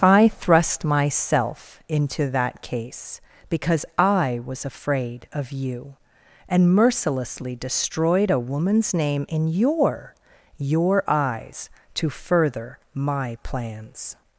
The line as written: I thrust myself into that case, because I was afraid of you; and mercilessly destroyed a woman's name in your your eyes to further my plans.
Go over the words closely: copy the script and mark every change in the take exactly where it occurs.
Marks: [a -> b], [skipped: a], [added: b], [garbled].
I thrust myself into that case, because I was afraid of you; and mercilessly destroyed a woman's name in your your eyes to further my plans.